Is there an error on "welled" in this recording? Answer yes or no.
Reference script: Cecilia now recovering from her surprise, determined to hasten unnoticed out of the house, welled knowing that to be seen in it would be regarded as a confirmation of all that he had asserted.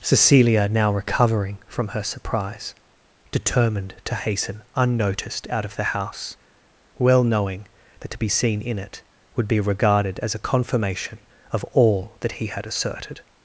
yes